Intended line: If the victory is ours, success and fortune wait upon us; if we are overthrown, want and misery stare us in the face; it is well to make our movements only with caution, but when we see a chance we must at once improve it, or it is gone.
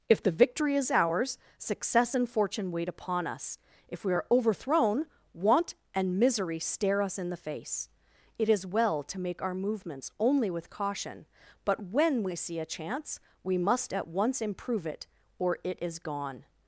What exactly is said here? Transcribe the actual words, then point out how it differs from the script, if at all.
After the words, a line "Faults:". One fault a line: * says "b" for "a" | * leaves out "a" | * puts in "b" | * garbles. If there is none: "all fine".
If the victory is ours, success and fortune wait upon us; if we are overthrown, want and misery stare us in the face; it is well to make our movements only with caution, but when we see a chance we must at once improve it, or it is gone.
Faults:
all fine